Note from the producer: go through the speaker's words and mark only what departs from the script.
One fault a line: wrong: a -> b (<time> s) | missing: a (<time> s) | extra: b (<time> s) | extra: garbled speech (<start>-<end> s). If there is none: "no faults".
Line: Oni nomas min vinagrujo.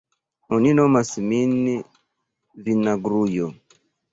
no faults